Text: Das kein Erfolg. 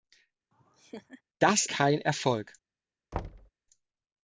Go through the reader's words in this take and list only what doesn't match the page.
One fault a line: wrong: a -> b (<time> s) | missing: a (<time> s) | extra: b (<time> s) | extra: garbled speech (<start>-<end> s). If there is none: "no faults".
no faults